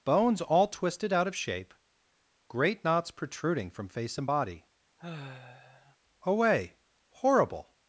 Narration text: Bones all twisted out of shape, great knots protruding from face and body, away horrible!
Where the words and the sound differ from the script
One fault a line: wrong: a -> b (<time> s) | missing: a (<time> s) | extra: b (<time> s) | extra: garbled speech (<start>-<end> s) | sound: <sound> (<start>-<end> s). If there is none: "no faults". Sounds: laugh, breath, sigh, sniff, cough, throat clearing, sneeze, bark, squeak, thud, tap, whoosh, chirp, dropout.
sound: sigh (5.0-6.0 s)